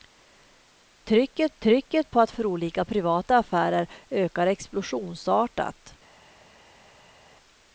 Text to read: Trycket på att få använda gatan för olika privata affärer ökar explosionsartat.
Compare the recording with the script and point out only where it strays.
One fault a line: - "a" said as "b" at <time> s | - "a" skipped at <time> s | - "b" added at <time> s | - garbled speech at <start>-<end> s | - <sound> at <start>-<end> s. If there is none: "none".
- "trycket" added at 1.6 s
- "få använda gatan" skipped at 2.3 s